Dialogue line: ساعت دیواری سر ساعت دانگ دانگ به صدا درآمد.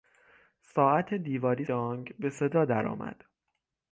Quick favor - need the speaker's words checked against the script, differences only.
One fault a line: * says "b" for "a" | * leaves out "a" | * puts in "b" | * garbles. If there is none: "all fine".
* leaves out "سر ساعت دانگ"